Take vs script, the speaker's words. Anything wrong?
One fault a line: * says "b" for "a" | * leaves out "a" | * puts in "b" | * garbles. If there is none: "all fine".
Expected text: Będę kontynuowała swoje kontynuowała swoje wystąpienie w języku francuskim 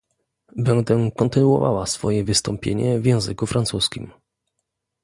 * leaves out "kontynuowała swoje"